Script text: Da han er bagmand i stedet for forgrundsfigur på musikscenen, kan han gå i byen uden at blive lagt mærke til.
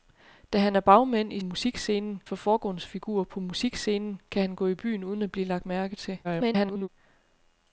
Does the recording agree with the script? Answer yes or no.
no